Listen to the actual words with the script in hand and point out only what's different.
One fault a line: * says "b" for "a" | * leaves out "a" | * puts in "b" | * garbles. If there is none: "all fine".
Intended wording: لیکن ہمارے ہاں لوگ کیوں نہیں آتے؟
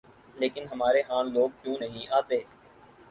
all fine